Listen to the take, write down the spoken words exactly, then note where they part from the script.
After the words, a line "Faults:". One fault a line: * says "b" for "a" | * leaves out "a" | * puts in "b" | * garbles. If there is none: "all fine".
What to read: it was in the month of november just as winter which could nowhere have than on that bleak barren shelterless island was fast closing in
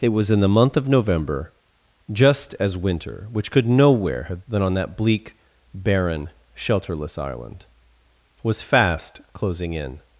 it was in the month of november just as winter which could nowhere have than on that bleak barren shelterless island was fast closing in
Faults:
all fine